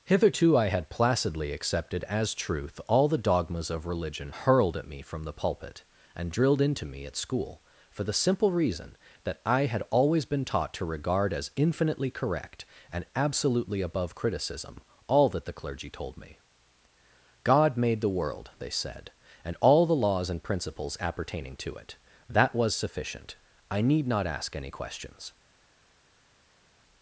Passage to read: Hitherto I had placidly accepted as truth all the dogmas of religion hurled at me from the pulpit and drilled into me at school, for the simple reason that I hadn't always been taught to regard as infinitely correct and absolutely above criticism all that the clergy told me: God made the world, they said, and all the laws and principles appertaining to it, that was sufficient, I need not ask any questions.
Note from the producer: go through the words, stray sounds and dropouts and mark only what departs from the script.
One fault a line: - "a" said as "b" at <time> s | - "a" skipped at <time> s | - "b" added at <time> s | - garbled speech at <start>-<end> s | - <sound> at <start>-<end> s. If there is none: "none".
- "hadn't" said as "had" at 9.6 s